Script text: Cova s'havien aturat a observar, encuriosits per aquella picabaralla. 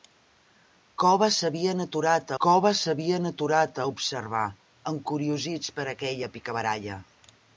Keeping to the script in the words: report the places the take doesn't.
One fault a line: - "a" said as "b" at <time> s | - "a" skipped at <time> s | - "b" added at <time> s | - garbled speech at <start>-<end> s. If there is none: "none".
- "cova s'havien aturat" added at 2.4 s